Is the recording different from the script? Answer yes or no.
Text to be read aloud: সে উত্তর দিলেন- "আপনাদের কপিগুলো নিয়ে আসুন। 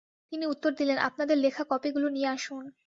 yes